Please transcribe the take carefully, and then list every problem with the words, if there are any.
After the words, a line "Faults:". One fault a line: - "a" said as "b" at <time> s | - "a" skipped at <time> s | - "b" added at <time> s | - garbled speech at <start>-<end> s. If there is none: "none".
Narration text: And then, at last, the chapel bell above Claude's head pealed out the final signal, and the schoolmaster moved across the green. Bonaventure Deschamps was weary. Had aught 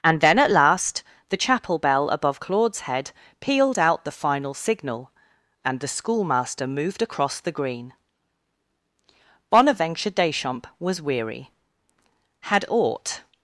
And then, at last, the chapel bell above Claude's head pealed out the final signal, and the schoolmaster moved across the green. Bonaventure Deschamps was weary. Had aught
Faults:
none